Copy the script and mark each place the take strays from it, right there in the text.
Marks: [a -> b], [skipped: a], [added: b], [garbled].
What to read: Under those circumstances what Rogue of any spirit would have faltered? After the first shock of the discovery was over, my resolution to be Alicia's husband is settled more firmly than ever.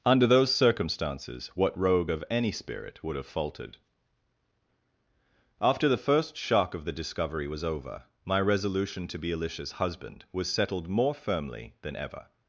Under those circumstances what Rogue of any spirit would have faltered? After the first shock of the discovery was over, my resolution to be Alicia's husband [is -> was] settled more firmly than ever.